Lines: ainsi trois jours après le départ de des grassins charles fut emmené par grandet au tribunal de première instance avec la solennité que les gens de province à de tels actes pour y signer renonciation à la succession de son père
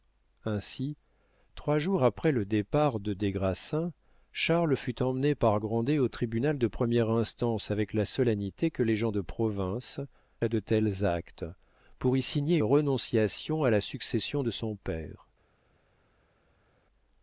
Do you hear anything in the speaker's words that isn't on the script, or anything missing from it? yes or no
no